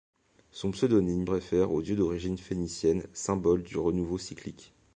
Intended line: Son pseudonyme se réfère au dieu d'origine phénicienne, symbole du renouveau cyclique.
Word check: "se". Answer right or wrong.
wrong